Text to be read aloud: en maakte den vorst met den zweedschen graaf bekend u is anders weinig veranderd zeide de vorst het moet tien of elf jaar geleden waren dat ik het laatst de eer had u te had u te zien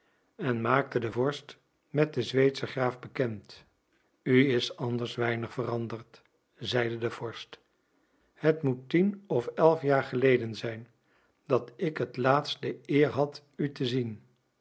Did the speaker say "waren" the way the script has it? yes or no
no